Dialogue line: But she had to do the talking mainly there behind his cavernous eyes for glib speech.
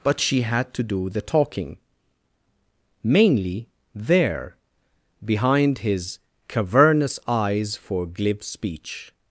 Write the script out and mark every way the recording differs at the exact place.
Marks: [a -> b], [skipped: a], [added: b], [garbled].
But she had to do the talking mainly there behind his cavernous eyes for glib speech.